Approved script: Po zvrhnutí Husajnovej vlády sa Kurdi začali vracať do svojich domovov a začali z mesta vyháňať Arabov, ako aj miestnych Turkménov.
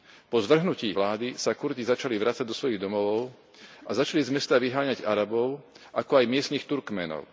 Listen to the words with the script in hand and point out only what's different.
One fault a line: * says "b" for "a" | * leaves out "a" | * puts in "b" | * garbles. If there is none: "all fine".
* leaves out "Husajnovej"